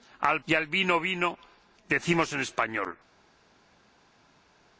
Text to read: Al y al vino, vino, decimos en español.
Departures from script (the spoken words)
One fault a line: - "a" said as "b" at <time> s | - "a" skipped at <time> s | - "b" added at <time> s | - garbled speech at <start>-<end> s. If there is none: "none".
none